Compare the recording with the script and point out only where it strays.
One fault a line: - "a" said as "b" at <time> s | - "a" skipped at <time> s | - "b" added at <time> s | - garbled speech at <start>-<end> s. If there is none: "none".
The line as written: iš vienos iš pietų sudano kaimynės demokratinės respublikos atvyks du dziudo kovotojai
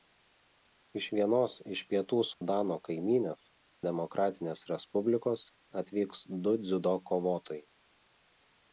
none